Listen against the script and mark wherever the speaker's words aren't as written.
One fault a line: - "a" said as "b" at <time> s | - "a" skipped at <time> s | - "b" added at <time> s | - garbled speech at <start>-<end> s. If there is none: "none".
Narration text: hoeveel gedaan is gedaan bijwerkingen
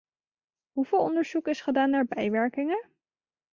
- "gedaan" said as "onderzoek" at 1.0 s
- "naar" added at 1.9 s